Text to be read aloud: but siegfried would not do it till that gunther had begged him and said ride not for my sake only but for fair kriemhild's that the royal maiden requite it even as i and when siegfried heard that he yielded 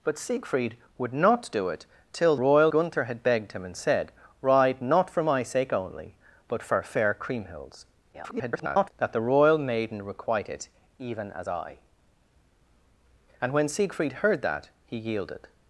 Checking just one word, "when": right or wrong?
right